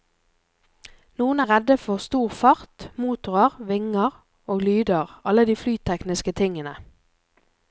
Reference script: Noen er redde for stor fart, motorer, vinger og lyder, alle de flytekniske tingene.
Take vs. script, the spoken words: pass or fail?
pass